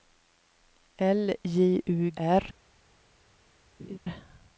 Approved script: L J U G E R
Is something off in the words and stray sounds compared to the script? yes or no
yes